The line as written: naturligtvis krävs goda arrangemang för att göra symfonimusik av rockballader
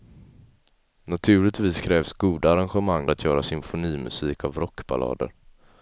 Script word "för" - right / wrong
wrong